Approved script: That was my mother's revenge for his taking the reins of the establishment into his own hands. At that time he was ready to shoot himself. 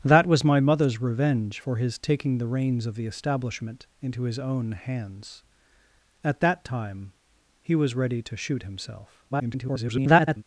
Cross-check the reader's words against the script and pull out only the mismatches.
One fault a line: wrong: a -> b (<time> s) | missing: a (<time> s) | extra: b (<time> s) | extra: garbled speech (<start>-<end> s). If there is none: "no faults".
extra: garbled speech (9.3-10.4 s)